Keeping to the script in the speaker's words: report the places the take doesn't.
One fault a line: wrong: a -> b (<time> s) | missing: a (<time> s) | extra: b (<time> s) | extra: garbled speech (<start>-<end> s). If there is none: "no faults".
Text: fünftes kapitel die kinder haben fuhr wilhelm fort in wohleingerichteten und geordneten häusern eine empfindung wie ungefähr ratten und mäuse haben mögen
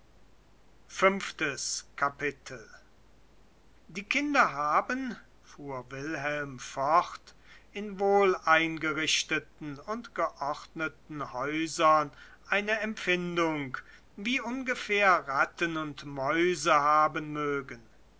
no faults